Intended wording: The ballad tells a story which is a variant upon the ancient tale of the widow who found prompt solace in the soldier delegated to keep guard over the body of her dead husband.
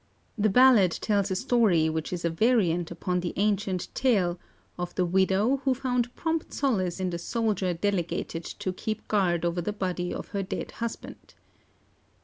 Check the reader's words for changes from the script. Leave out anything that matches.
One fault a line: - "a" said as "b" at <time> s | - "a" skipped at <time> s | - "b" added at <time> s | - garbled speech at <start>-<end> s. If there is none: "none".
none